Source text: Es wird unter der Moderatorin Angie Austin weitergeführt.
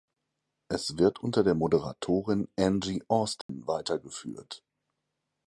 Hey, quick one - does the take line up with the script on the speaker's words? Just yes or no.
yes